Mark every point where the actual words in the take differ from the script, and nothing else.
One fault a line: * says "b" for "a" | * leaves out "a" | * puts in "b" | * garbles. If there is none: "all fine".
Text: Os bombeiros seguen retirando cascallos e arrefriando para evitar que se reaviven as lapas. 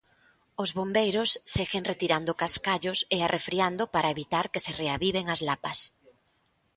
all fine